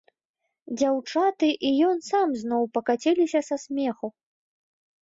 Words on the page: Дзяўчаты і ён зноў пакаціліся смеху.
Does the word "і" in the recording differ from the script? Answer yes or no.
no